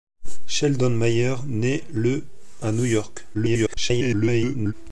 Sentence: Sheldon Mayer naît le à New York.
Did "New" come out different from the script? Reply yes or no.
no